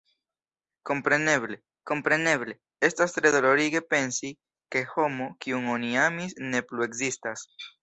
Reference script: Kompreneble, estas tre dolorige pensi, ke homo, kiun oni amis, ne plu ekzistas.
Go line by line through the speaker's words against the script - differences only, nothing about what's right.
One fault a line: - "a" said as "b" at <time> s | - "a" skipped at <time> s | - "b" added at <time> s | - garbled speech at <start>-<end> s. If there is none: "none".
- "kompreneble" added at 1.9 s